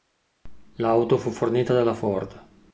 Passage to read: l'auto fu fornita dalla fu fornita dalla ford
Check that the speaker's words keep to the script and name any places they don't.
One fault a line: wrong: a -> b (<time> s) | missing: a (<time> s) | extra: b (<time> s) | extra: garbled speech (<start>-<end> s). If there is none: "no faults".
missing: fu fornita dalla (1.9 s)